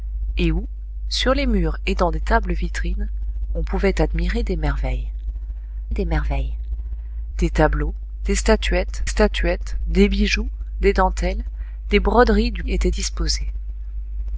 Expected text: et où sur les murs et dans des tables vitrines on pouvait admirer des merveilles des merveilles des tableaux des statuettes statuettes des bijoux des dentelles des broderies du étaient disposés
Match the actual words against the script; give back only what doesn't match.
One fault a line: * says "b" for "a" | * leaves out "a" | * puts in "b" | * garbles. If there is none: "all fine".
all fine